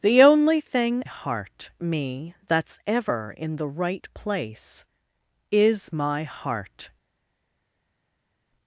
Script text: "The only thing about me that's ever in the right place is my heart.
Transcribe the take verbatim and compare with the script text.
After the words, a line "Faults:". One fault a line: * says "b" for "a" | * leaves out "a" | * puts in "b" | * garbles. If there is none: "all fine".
"The only thing heart me that's ever in the right place is my heart.
Faults:
* says "heart" for "about"